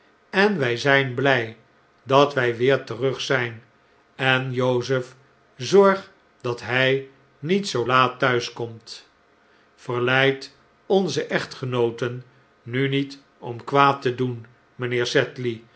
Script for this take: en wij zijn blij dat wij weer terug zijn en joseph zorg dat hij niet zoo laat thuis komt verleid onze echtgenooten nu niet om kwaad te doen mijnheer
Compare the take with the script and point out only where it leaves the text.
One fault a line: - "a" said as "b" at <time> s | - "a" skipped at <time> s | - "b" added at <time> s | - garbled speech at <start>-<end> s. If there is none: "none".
none